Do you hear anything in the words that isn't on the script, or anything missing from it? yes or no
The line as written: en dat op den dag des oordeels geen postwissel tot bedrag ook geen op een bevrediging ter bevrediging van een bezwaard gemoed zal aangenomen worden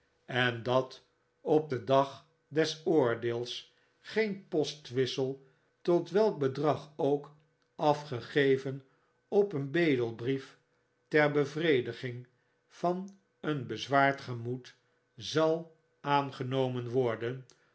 yes